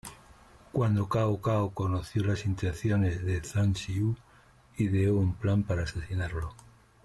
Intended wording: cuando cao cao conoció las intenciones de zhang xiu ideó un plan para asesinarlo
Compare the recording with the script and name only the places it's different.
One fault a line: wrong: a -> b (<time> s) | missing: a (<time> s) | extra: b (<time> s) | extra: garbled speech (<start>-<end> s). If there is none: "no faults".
no faults